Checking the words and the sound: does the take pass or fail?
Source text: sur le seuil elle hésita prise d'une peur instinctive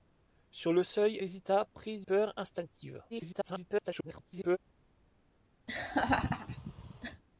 fail